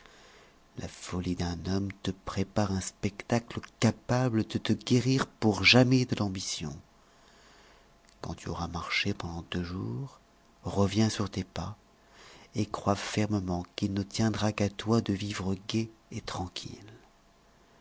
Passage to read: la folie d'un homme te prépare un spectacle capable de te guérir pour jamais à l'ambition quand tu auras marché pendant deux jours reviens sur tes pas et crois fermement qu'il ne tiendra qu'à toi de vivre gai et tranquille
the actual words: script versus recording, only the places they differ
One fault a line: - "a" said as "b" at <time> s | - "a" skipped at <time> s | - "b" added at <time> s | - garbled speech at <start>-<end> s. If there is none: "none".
- "à" said as "de" at 6.0 s